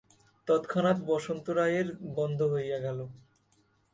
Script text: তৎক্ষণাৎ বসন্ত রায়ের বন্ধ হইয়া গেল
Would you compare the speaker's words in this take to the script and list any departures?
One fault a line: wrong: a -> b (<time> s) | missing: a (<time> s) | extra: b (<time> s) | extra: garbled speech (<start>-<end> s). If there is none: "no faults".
no faults